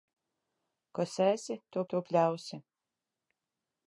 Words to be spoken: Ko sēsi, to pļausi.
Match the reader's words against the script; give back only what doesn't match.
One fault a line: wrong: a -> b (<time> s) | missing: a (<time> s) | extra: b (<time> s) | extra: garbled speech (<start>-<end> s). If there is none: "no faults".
extra: to (1.9 s)